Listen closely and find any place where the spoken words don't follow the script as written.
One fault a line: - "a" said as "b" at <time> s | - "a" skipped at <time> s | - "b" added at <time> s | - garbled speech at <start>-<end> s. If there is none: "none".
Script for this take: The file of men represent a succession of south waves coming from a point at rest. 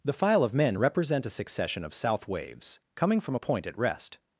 none